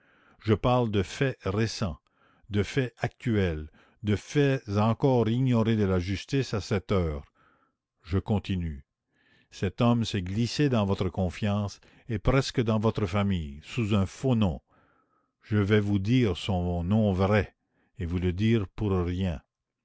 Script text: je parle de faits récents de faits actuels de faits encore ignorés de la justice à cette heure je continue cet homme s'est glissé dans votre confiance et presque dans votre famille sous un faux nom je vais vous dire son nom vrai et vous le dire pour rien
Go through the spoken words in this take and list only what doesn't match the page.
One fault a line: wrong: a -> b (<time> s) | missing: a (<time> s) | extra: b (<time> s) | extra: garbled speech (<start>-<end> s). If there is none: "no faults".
no faults